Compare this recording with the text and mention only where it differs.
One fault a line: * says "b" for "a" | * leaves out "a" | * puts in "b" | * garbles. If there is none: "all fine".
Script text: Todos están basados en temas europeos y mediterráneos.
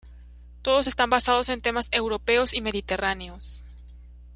all fine